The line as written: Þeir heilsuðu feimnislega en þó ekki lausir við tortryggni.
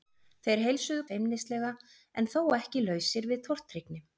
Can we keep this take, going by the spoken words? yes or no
yes